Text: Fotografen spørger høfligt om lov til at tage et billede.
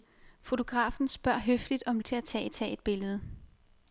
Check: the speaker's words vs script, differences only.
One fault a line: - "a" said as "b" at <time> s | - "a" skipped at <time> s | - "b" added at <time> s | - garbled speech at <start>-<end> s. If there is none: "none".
- "lov" skipped at 2.0 s
- "tage" added at 2.5 s